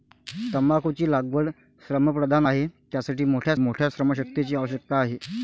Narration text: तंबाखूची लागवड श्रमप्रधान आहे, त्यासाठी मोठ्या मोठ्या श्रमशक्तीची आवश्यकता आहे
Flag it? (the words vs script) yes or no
no